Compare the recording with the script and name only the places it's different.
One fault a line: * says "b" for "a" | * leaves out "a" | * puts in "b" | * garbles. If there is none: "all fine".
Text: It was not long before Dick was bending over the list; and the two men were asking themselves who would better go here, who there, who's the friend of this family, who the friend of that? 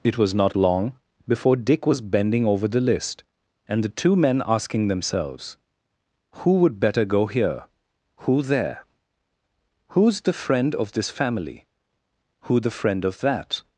* leaves out "were"